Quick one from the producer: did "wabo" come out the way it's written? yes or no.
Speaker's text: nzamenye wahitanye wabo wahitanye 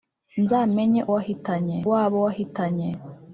yes